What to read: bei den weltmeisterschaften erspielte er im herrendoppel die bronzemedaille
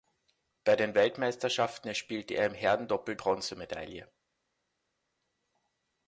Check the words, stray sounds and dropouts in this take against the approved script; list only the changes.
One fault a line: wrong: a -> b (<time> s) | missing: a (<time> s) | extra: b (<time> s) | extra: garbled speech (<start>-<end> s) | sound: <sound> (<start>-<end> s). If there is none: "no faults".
missing: die (3.1 s)